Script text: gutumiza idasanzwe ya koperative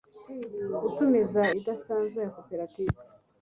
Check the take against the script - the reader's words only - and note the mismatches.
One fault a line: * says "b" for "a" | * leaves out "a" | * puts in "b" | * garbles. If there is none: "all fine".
all fine